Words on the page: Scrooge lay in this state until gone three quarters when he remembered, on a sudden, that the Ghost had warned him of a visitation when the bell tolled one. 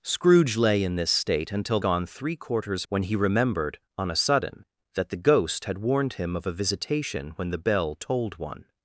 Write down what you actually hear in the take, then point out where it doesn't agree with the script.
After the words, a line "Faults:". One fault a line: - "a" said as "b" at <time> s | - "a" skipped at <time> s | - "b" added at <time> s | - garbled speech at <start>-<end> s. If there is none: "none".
Scrooge lay in this state until gone three quarters when he remembered, on a sudden, that the Ghost had warned him of a visitation when the bell tolled one.
Faults:
none